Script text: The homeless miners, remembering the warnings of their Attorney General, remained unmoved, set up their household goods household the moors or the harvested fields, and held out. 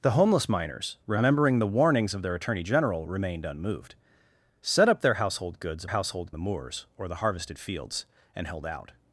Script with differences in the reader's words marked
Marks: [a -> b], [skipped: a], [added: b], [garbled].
The homeless miners, remembering the warnings of their Attorney General, remained unmoved, set up their household goods household the moors or the harvested fields, and held out.